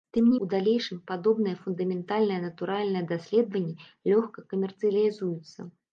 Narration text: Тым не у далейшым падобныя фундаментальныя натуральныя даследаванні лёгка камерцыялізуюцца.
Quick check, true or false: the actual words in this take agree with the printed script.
true